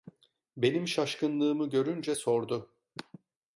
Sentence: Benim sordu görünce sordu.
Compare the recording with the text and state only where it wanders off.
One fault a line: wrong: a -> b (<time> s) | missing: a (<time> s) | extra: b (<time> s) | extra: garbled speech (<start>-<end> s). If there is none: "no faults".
wrong: sordu -> şaşkınlığımı (0.9 s)